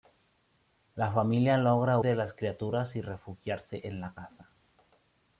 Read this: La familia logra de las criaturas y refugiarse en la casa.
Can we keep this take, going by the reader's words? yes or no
yes